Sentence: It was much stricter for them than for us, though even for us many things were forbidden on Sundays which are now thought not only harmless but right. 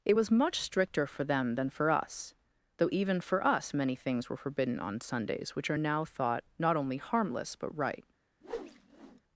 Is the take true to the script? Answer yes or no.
yes